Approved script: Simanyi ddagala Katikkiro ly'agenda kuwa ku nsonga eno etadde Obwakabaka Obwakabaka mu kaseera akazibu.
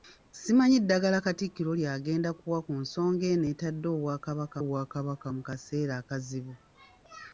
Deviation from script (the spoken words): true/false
false